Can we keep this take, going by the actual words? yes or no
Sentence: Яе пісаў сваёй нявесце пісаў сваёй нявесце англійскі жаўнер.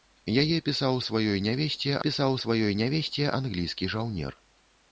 yes